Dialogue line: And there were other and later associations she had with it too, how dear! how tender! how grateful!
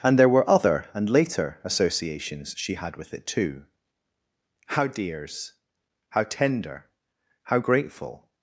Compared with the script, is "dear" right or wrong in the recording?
wrong